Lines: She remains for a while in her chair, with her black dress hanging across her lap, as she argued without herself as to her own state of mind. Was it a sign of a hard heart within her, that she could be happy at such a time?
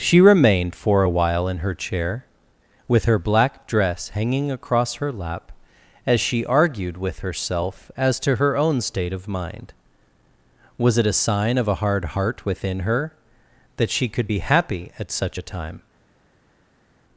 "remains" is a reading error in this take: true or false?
true